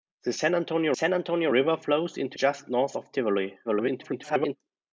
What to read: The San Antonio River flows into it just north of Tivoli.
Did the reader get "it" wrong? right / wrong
wrong